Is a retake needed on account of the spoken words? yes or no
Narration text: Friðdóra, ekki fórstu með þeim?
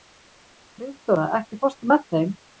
no